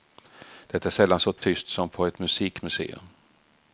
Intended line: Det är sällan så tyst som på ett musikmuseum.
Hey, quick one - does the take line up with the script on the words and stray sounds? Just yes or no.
no